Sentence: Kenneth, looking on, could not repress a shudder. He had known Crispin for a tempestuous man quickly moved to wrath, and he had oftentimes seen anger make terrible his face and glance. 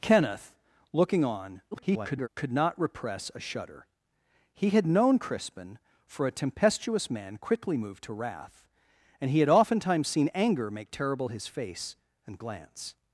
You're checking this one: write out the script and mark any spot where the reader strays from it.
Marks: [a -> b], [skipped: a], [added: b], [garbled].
Kenneth, looking on, [garbled] could not repress a shudder. He had known Crispin for a tempestuous man quickly moved to wrath, and he had oftentimes seen anger make terrible his face and glance.